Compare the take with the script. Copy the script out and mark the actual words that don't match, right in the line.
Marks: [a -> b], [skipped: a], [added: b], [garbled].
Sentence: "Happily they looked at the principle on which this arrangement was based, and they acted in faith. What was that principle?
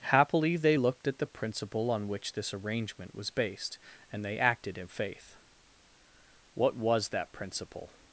"Happily they looked at the principle on which this arrangement was based, and they acted in faith. What was that principle?